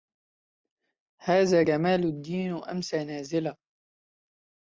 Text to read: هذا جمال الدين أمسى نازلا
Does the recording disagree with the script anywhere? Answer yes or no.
no